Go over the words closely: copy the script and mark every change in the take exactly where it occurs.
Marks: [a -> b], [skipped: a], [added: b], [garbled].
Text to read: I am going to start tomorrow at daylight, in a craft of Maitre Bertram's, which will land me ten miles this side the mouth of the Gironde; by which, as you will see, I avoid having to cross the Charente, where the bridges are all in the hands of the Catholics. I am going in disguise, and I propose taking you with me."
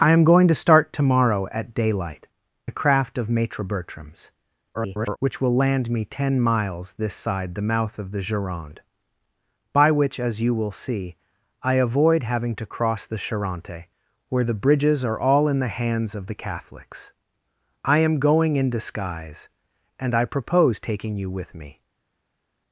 I am going to start tomorrow at daylight, [skipped: in] a craft of Maitre Bertram's, [garbled] which will land me ten miles this side the mouth of the Gironde; by which, as you will see, I avoid having to cross the Charente, where the bridges are all in the hands of the Catholics. I am going in disguise, and I propose taking you with me."